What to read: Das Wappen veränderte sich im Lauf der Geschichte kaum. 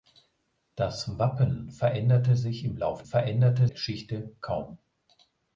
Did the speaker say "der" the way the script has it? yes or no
no